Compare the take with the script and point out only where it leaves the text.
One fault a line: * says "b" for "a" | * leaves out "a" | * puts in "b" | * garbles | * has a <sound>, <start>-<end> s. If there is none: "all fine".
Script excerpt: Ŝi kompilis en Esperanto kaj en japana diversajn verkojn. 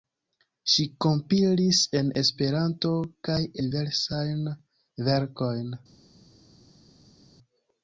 * leaves out "en japana"